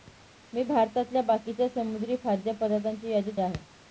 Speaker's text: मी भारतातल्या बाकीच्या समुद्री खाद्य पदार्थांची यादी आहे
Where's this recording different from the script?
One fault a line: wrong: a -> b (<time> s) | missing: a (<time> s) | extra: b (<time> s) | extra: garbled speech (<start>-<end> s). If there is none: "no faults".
no faults